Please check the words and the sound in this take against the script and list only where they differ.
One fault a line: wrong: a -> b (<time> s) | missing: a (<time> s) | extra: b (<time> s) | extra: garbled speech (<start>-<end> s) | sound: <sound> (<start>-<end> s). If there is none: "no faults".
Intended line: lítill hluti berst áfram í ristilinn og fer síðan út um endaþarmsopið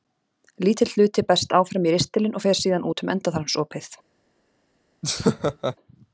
sound: laugh (5.0-5.8 s)